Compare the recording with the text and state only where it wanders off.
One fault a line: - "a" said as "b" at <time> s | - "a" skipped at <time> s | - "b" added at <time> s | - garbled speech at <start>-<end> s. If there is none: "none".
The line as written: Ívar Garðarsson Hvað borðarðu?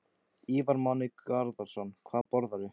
- "Máni" added at 0.8 s